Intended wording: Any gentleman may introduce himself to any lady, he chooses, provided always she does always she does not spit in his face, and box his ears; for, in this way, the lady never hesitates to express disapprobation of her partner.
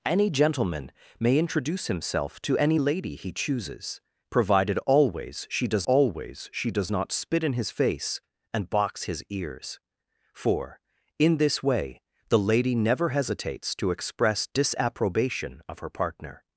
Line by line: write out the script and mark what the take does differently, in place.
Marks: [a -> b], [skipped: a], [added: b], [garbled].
Any gentleman may introduce himself to any lady, he chooses, provided always she does always she does not spit in his face, and box his ears; for, in this way, the lady never hesitates to express disapprobation of her partner.